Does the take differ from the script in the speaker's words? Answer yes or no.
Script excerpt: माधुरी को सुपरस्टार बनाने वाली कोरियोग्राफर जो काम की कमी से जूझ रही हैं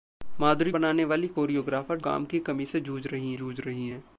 yes